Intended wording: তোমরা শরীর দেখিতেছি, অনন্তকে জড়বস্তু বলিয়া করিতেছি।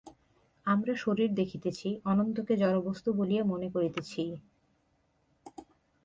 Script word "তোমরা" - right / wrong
wrong